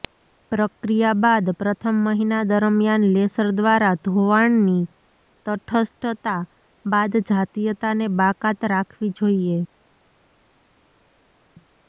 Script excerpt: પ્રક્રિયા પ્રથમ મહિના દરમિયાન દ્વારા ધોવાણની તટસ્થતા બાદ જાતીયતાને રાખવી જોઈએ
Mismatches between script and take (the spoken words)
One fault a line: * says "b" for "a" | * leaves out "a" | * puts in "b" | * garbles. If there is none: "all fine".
* puts in "બાદ"
* puts in "લેસર"
* puts in "બાકાત"